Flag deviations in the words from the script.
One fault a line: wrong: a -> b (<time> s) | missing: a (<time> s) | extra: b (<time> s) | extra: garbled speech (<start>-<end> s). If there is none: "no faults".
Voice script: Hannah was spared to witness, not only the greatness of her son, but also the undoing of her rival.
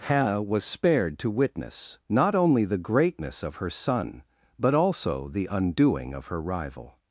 no faults